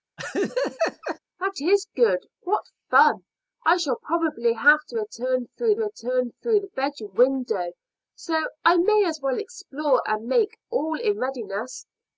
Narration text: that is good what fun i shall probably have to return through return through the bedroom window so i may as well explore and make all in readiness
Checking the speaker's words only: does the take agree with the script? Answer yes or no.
yes